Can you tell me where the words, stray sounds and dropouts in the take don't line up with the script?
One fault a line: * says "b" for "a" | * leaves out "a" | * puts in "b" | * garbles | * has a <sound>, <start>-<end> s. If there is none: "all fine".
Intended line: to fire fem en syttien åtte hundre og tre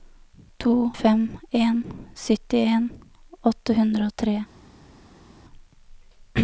* leaves out "fire"